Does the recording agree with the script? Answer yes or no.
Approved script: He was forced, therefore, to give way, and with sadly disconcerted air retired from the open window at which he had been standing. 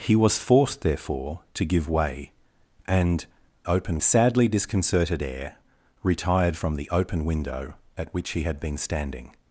no